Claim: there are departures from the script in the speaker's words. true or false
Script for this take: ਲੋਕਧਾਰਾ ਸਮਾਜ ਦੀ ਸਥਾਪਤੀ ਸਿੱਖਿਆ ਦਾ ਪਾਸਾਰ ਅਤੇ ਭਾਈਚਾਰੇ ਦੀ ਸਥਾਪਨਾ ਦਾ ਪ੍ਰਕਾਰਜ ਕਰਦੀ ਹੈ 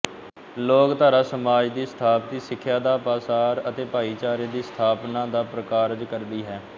false